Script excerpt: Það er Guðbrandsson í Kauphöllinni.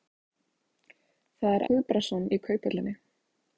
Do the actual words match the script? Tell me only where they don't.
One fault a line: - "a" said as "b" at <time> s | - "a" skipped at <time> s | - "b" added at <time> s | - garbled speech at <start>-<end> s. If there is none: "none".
none